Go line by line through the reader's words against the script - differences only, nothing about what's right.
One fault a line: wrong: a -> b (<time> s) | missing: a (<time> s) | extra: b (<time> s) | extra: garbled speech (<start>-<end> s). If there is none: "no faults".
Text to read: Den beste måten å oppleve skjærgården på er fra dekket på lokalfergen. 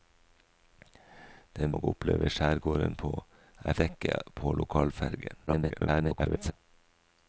missing: beste måten (1.8 s)
missing: fra (3.8 s)
extra: garbled speech (5.5-6.5 s)